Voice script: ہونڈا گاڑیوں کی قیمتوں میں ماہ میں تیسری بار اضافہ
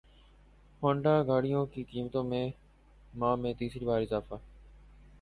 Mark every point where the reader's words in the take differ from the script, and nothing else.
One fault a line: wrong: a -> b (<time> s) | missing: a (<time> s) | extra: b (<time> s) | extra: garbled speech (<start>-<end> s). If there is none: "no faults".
no faults